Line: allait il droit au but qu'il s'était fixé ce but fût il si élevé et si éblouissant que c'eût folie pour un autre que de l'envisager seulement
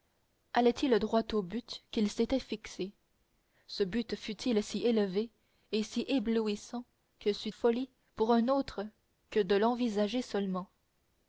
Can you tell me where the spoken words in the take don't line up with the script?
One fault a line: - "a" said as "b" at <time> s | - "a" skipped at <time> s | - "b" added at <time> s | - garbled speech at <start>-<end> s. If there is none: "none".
none